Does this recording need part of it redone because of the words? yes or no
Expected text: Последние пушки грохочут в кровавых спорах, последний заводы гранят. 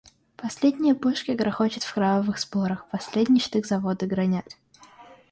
yes